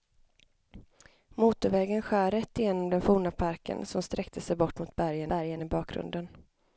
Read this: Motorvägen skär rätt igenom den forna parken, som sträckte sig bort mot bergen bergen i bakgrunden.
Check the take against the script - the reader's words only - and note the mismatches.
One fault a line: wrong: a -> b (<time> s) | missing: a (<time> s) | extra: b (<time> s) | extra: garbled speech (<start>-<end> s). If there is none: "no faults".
no faults